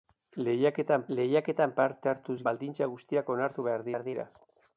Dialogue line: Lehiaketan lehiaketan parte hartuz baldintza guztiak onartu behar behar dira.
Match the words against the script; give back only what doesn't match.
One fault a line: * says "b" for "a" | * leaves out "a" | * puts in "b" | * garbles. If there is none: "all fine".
all fine